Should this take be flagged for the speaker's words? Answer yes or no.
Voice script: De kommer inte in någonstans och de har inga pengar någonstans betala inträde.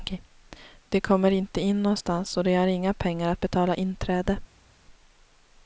yes